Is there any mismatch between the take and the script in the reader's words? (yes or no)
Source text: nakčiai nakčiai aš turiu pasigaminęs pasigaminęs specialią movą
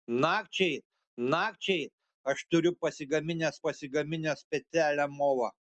no